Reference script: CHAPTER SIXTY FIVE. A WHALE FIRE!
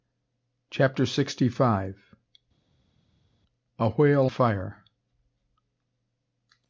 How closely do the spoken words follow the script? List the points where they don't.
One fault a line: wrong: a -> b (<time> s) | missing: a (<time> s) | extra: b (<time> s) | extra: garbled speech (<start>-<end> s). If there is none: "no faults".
no faults